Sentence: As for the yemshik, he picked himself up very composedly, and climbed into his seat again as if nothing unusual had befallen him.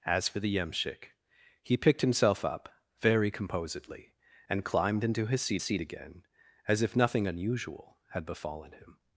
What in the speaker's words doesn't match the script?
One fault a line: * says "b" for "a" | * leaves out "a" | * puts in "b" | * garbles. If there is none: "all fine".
* puts in "seat"